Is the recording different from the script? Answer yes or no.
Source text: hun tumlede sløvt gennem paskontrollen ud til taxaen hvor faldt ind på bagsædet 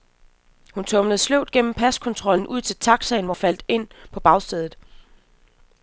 no